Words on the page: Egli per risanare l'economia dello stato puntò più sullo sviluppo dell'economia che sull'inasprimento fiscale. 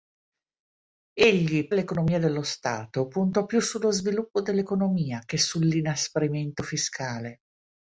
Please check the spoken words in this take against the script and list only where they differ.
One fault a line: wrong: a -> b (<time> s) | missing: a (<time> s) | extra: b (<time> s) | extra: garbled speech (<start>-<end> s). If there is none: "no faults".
missing: per risanare (1.7 s)